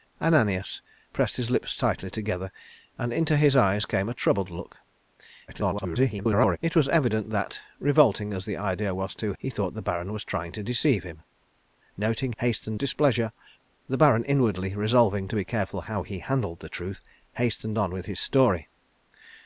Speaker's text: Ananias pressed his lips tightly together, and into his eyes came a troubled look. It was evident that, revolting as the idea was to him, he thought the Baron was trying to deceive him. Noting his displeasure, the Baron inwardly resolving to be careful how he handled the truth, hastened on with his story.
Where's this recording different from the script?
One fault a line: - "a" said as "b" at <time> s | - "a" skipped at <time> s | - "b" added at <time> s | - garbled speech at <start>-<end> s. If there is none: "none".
- garbled speech at 5.5-6.6 s
- "him" skipped at 9.3 s
- "his" said as "hastened" at 12.4 s